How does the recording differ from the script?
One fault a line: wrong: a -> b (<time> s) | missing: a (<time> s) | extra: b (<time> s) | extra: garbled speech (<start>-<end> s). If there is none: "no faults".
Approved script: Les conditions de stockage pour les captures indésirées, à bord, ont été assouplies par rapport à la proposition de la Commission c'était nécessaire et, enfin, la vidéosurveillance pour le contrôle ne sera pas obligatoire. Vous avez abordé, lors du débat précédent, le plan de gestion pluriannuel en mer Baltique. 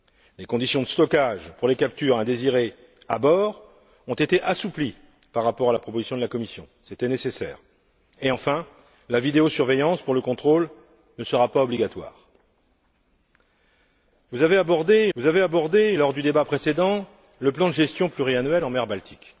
extra: vous avez abordé (15.1 s)